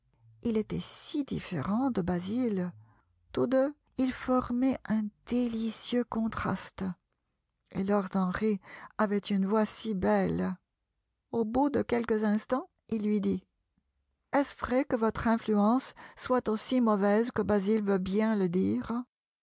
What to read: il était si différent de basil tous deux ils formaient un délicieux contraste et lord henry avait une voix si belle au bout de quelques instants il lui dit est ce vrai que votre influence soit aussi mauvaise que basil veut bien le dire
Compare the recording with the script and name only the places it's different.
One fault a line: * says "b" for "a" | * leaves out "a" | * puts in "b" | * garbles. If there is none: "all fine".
all fine